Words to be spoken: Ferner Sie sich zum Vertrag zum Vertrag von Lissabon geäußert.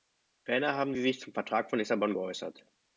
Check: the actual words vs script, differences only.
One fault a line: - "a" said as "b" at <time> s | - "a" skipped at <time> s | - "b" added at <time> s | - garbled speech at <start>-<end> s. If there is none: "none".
- "haben" added at 0.7 s
- "zum Vertrag" skipped at 1.7 s